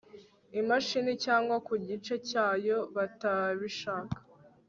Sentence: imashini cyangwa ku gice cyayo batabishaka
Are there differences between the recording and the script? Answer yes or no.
no